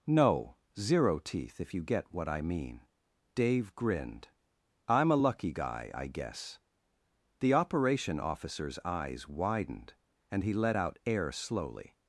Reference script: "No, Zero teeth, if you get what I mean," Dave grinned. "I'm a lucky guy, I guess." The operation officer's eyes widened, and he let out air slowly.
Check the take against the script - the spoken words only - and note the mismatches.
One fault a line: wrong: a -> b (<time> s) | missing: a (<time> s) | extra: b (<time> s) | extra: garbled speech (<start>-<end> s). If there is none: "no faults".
no faults